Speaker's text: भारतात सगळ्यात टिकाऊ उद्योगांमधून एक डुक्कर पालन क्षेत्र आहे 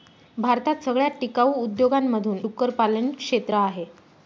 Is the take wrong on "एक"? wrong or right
wrong